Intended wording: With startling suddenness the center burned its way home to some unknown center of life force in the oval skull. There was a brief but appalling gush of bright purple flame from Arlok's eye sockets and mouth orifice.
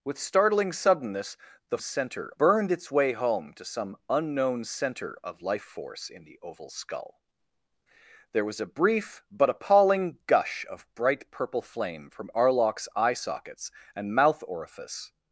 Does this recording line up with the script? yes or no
yes